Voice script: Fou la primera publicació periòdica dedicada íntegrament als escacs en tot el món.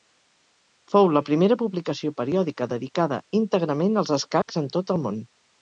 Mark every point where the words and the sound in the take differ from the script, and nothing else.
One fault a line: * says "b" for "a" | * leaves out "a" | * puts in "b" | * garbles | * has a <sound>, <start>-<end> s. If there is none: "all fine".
* has a dropout, 4.4-4.5 s